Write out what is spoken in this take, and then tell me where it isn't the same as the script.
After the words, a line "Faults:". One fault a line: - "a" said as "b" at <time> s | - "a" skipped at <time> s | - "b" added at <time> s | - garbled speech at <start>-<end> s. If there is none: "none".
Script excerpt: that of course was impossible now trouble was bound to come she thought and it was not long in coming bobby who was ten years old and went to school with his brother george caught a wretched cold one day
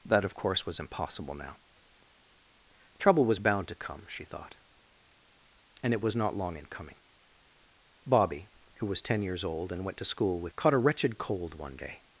that of course was impossible now trouble was bound to come she thought and it was not long in coming bobby who was ten years old and went to school with caught a wretched cold one day
Faults:
- "his brother george" skipped at 10.5 s